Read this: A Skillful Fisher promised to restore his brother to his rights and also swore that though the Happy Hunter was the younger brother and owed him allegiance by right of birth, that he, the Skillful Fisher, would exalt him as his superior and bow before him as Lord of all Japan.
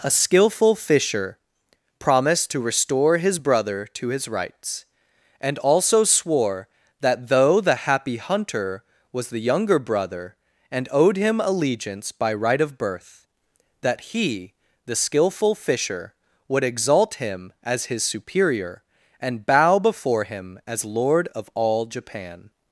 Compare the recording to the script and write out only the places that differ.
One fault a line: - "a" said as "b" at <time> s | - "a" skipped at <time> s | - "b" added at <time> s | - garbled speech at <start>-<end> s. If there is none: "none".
none